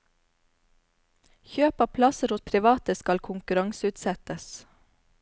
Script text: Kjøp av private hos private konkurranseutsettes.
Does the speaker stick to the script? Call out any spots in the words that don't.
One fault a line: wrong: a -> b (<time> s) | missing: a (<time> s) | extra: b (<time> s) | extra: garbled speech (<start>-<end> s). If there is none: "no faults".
wrong: private -> plasser (2.0 s)
extra: skal (3.0 s)